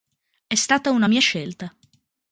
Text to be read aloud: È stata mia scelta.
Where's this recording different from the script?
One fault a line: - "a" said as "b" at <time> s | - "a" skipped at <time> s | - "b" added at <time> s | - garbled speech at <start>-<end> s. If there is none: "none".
- "una" added at 0.9 s